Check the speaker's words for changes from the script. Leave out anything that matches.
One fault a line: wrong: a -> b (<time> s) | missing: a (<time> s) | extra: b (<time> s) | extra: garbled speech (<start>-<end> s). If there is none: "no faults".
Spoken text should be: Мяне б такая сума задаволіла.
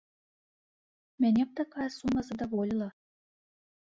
no faults